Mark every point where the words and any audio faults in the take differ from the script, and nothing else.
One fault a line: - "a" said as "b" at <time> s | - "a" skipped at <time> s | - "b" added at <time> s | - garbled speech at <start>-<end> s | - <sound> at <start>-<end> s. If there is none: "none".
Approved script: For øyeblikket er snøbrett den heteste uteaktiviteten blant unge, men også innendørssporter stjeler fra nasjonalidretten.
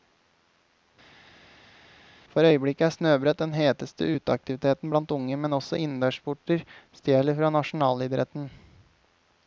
none